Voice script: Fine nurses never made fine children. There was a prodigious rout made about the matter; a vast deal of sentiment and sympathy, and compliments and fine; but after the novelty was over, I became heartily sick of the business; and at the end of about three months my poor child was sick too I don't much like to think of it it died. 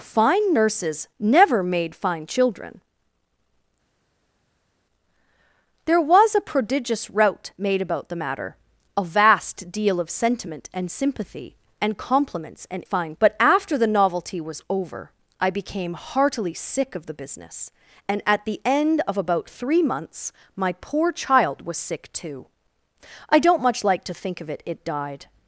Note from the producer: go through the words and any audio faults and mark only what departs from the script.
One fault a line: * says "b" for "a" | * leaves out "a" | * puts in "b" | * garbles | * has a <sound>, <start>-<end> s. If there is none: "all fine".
all fine